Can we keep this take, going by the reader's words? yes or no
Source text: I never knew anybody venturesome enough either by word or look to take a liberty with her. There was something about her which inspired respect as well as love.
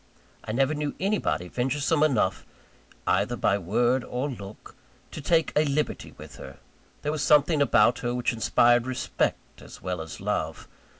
yes